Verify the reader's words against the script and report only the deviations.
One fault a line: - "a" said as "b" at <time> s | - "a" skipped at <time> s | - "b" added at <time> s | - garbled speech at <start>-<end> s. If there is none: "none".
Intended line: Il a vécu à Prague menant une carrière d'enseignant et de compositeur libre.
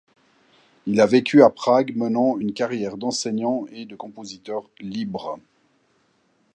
none